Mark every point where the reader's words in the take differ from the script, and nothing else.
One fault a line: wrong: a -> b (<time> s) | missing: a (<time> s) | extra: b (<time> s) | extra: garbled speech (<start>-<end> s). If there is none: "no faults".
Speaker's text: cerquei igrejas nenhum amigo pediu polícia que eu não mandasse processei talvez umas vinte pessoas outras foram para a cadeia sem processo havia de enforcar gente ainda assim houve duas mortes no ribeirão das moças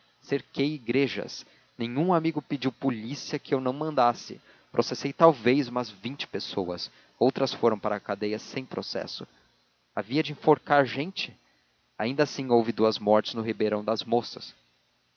no faults